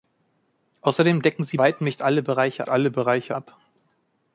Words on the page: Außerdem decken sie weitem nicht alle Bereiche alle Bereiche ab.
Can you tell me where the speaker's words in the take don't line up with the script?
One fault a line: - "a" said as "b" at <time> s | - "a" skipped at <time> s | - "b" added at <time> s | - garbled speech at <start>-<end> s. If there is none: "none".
none